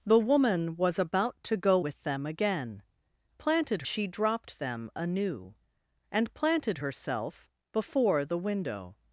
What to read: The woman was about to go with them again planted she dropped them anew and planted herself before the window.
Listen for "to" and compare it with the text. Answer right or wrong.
right